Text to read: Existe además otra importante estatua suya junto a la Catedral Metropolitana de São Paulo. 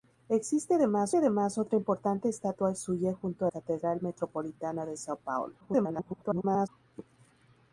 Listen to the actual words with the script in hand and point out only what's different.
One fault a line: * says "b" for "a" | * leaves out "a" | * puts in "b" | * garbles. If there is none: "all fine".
* puts in "además"
* leaves out "la"
* garbles